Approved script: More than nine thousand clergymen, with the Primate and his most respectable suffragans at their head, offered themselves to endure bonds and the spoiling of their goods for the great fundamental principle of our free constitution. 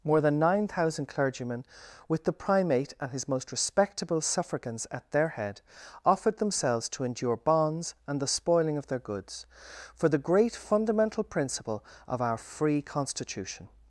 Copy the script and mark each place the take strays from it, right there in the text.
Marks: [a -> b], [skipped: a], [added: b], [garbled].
More than nine thousand clergymen, with the Primate and his most respectable suffragans at their head, offered themselves to endure bonds and the spoiling of their goods for the great fundamental principle of our free constitution.